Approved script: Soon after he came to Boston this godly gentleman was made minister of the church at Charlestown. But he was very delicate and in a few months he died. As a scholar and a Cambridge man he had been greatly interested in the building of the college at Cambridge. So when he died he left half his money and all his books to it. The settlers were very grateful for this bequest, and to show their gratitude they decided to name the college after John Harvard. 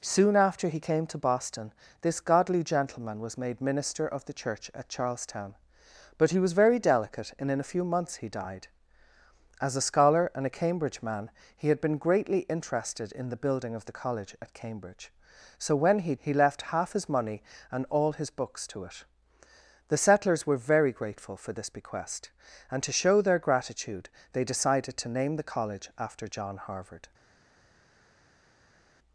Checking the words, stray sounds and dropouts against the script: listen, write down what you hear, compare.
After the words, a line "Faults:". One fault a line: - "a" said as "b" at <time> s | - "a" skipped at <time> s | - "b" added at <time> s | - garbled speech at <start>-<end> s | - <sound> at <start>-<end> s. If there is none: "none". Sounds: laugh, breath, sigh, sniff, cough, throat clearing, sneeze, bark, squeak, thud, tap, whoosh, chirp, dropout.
Soon after he came to Boston this godly gentleman was made minister of the church at Charlestown. But he was very delicate and in a few months he died. As a scholar and a Cambridge man he had been greatly interested in the building of the college at Cambridge. So when he he left half his money and all his books to it. The settlers were very grateful for this bequest, and to show their gratitude they decided to name the college after John Harvard.
Faults:
- "died" skipped at 16.1 s